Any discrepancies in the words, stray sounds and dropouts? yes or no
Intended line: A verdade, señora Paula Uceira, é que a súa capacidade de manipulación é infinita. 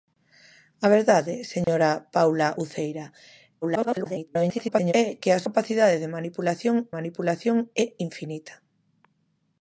yes